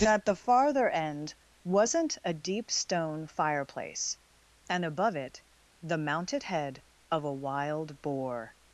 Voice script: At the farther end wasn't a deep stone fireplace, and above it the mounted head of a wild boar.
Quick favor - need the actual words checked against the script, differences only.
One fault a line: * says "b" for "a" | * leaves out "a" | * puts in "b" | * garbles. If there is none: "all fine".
all fine